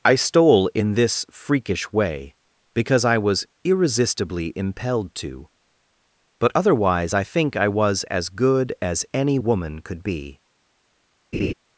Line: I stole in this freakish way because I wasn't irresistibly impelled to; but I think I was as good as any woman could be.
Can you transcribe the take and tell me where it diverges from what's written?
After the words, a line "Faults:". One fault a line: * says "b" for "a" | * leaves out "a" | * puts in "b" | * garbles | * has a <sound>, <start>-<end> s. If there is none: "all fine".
I stole in this freakish way because I was irresistibly impelled to; but otherwise I think I was as good as any woman could be.
Faults:
* says "was" for "wasn't"
* puts in "otherwise"
* has a laugh, 11.3-11.5 s